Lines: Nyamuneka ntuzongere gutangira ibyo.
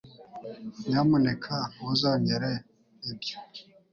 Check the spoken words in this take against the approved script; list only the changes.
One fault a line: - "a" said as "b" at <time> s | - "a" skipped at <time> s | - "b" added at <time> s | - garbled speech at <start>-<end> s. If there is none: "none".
- "gutangira" skipped at 2.5 s